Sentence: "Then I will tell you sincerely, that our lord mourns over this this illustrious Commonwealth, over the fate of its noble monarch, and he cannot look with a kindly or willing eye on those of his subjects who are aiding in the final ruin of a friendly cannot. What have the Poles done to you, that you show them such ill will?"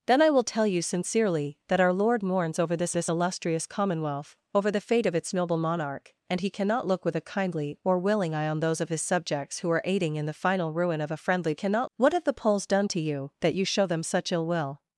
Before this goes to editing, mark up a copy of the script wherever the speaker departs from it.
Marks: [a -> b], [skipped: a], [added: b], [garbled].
"Then I will tell you sincerely, that our lord mourns over this this illustrious Commonwealth, over the fate of its noble monarch, and he cannot look with a kindly or willing eye on those of his subjects who are aiding in the final ruin of a friendly cannot. What have the Poles done to you, that you show them such ill will?"